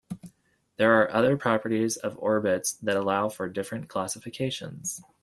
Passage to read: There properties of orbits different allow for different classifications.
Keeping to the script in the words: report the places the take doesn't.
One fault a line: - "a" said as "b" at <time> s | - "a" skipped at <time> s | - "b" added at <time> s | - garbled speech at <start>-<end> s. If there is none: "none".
- "are other" added at 1.0 s
- "different" said as "that" at 2.7 s